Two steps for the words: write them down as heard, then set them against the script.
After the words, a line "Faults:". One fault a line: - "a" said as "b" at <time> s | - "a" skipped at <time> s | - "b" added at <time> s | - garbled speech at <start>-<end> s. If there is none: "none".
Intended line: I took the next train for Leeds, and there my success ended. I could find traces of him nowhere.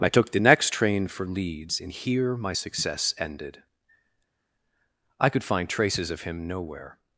I took the next train for Leeds, and here my success ended. I could find traces of him nowhere.
Faults:
- "there" said as "here" at 1.9 s